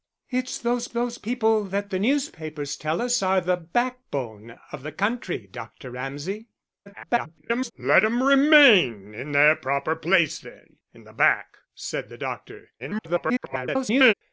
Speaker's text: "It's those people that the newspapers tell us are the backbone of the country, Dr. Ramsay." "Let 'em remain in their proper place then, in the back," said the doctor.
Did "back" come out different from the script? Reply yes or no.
no